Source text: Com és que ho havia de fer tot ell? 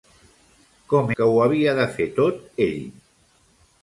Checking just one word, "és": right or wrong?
wrong